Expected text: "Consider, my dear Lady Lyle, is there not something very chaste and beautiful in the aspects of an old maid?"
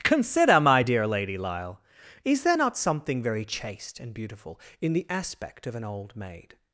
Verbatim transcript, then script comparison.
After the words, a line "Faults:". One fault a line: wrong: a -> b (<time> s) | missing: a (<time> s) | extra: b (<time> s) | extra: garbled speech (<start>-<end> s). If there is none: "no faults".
"Consider, my dear Lady Lyle, is there not something very chaste and beautiful in the aspect of an old maid?"
Faults:
wrong: aspects -> aspect (5.1 s)